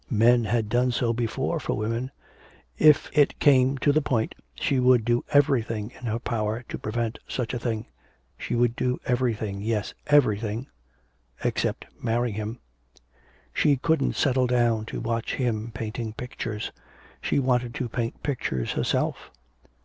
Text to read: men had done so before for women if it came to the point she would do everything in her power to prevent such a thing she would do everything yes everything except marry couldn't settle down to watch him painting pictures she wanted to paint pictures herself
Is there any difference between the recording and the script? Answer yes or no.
yes